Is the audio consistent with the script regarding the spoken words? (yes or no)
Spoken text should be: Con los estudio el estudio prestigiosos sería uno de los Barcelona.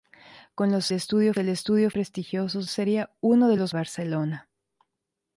yes